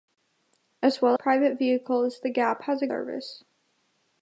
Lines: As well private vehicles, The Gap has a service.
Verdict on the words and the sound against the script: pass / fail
pass